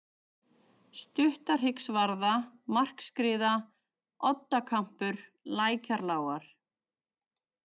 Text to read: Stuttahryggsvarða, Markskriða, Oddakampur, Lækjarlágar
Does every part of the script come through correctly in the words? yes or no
yes